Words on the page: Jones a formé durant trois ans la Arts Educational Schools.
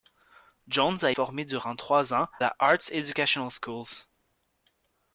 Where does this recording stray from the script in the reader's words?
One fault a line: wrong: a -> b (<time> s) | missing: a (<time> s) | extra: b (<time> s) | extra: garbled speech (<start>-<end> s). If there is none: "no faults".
no faults